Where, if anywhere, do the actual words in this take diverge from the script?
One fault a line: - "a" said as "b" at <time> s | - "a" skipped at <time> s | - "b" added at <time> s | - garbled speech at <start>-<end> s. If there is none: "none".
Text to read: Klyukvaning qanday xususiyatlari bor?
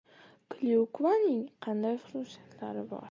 none